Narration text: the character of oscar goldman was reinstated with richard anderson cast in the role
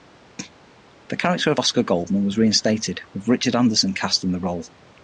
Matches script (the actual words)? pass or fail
pass